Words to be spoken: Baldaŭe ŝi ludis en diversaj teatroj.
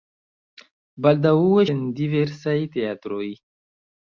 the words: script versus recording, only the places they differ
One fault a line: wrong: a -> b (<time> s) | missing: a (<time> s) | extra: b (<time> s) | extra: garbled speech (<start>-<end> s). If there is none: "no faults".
missing: ŝi ludis (1.6 s)